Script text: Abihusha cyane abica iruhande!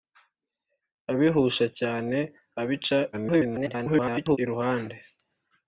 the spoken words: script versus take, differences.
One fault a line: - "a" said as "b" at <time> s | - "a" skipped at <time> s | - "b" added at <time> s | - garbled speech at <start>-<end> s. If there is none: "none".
- garbled speech at 3.1-4.4 s